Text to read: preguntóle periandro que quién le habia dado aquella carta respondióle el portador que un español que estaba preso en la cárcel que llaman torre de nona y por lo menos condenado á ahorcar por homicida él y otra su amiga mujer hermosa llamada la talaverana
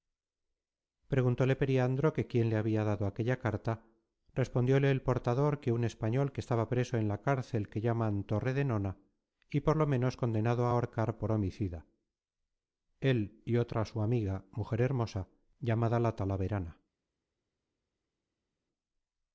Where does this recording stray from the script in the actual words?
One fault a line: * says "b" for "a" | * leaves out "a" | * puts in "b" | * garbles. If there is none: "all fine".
all fine